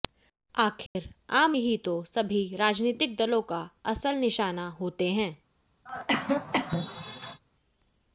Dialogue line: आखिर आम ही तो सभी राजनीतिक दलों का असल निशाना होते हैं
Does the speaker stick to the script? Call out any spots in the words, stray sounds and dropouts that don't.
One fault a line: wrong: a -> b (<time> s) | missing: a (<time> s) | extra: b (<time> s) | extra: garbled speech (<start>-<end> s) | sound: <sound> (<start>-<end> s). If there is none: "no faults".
sound: dropout (0.9-1.0 s)
sound: cough (5.9-7.4 s)